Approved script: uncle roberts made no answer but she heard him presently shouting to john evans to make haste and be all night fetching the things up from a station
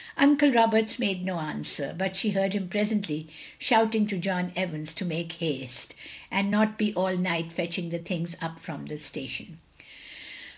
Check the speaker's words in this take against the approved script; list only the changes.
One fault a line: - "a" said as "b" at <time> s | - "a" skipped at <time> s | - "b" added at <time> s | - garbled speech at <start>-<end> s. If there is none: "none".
- "not" added at 6.5 s
- "a" said as "the" at 8.9 s